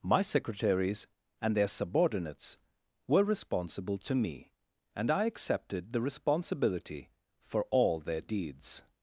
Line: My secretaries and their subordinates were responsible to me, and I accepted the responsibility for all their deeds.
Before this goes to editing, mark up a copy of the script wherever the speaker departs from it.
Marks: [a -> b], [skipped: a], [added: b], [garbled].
My secretaries and their subordinates were responsible to me, and I accepted the responsibility for all their deeds.